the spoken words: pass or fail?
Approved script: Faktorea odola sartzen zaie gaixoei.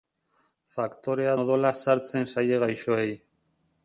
pass